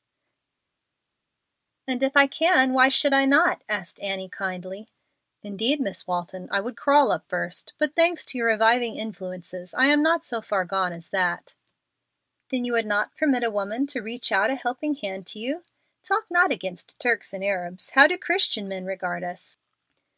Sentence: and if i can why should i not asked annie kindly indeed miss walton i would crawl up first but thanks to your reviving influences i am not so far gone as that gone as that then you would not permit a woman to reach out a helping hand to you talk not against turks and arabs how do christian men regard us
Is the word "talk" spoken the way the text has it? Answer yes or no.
yes